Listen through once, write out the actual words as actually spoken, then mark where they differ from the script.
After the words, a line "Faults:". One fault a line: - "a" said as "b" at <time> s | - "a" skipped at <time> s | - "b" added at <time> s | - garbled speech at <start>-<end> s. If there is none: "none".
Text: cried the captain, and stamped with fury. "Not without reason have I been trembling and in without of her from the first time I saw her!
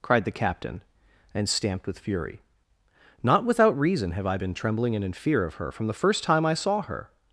cried the captain, and stamped with fury. "Not without reason have I been trembling and in fear of her from the first time I saw her!
Faults:
- "without" said as "fear" at 5.1 s